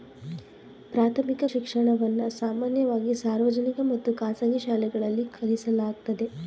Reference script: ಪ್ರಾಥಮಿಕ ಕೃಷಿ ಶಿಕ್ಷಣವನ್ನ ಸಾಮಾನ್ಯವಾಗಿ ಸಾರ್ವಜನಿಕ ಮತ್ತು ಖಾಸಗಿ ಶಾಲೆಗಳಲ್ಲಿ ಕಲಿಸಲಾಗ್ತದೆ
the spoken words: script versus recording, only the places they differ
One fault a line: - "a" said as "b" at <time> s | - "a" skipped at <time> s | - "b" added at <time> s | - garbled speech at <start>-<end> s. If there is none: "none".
- "ಕೃಷಿ" skipped at 1.4 s